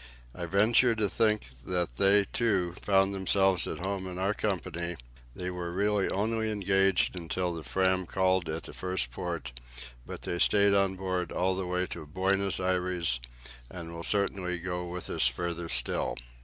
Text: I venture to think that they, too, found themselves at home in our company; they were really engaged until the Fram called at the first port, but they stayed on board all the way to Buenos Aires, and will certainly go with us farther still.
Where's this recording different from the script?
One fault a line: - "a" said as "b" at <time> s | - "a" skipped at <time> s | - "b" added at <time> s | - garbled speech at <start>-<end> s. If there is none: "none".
- "only" added at 6.1 s